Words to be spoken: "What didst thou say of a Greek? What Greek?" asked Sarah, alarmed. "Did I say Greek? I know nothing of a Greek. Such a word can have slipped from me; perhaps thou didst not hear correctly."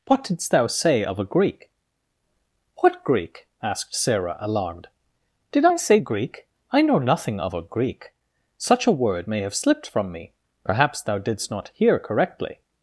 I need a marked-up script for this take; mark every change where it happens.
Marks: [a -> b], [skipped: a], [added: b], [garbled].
"What didst thou say of a Greek? What Greek?" asked Sarah, alarmed. "Did I say Greek? I know nothing of a Greek. Such a word [can -> may] have slipped from me; perhaps thou didst not hear correctly."